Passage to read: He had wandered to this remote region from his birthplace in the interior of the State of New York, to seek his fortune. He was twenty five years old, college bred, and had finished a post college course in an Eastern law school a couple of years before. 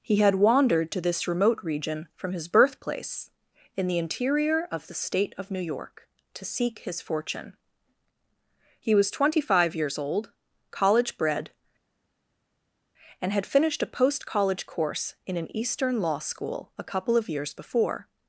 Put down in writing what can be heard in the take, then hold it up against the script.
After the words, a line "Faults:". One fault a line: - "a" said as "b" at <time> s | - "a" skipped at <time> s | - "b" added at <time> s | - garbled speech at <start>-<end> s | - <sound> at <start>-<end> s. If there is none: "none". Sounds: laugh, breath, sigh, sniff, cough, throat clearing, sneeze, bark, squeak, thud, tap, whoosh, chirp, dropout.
He had wandered to this remote region from his birthplace in the interior of the State of New York, to seek his fortune. He was twenty five years old, college bred, and had finished a post college course in an Eastern law school a couple of years before.
Faults:
none